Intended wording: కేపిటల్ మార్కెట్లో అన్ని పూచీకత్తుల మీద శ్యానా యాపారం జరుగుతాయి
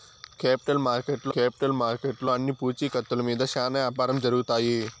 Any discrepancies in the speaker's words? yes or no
yes